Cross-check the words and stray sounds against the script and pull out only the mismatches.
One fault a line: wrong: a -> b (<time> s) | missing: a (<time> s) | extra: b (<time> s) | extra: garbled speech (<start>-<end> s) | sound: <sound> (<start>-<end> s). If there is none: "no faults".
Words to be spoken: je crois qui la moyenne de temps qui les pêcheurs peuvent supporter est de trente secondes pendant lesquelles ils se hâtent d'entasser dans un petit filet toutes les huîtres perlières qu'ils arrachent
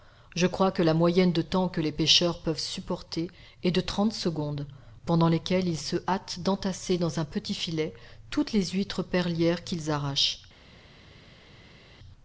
wrong: qui -> que (0.7 s)
wrong: qui -> que (1.7 s)